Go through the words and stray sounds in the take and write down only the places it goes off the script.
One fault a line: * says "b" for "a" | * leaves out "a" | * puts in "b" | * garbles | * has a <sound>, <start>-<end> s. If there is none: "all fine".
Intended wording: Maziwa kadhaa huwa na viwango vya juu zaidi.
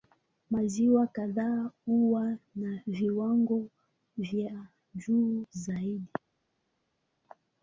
all fine